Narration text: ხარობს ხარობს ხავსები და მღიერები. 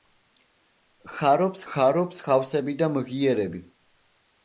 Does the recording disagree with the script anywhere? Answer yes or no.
no